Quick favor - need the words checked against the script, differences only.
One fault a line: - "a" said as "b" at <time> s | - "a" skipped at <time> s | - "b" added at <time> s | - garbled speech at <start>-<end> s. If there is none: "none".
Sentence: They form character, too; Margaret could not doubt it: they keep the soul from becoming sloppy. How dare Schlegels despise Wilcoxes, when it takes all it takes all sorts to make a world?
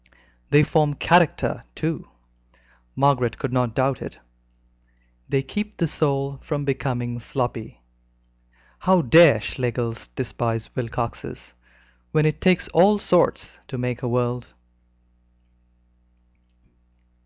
- "it takes all" skipped at 13.0 s